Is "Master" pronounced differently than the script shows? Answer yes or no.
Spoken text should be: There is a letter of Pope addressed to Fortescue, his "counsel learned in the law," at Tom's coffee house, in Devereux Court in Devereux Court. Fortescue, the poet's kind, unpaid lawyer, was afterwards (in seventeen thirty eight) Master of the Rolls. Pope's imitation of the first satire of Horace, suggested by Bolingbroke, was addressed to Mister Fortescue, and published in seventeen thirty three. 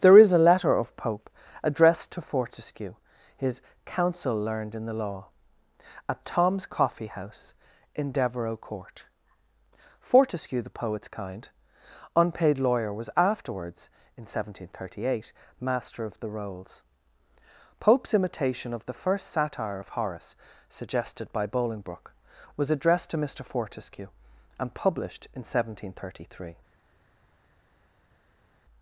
no